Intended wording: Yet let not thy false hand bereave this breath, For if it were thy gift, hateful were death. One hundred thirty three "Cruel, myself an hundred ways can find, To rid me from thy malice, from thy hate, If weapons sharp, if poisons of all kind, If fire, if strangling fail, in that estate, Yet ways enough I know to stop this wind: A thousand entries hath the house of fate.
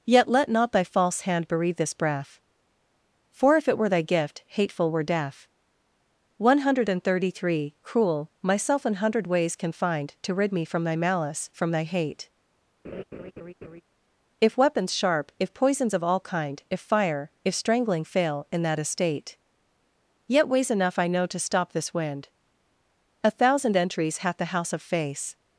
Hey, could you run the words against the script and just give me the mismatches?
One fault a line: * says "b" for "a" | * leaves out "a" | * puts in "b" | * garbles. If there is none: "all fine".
* says "face" for "fate"